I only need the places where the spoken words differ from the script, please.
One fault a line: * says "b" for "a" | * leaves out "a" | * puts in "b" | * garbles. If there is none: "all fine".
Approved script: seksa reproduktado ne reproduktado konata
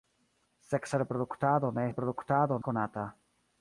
all fine